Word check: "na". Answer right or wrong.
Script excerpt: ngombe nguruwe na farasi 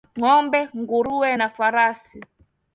right